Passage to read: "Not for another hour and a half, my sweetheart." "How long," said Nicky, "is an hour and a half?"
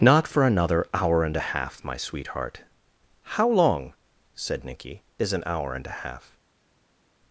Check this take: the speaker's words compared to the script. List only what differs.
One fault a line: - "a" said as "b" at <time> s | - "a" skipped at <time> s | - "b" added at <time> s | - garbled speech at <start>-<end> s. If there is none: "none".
none